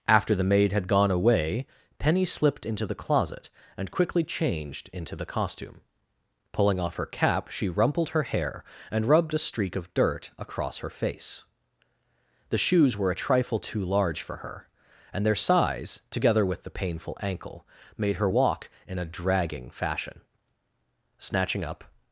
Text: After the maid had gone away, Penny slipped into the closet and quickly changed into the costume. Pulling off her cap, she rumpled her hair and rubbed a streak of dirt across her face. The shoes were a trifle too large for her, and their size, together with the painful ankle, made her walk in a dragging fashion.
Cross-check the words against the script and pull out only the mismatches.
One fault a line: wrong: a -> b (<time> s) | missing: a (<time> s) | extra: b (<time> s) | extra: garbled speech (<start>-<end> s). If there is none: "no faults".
extra: Snatching up (21.2 s)